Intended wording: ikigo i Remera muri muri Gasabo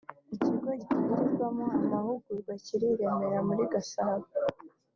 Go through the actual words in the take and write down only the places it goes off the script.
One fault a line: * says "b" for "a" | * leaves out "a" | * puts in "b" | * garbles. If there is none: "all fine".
* puts in "gitangirwamo amahugurwa kiri"
* leaves out "muri"